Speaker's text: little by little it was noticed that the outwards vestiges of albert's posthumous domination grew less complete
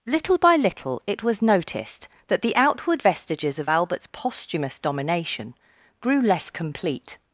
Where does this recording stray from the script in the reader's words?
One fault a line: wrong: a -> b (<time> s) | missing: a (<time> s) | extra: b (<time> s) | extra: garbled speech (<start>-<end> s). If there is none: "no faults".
wrong: outwards -> outward (2.5 s)